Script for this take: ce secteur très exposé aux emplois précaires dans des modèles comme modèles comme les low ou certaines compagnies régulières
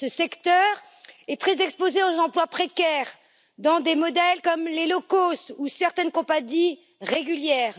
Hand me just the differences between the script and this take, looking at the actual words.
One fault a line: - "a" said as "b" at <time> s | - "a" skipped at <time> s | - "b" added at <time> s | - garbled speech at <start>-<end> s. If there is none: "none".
- "est" added at 1.3 s
- "modèles comme" skipped at 4.6 s
- "cost" added at 5.0 s